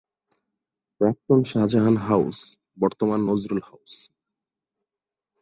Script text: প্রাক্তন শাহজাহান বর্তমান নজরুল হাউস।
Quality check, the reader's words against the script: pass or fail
fail